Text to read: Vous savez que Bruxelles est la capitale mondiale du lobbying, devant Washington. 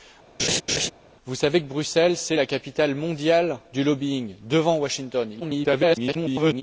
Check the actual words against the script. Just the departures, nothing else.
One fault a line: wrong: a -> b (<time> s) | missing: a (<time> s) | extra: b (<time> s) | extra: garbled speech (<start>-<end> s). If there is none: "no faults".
extra: garbled speech (5.4-6.6 s)